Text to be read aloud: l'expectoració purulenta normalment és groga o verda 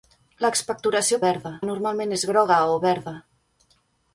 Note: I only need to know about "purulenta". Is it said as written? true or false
false